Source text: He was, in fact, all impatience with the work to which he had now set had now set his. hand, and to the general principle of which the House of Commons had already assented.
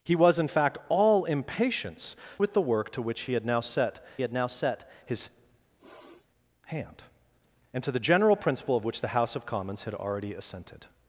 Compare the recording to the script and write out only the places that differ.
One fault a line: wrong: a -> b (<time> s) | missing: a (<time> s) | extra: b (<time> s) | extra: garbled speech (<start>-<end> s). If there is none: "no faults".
no faults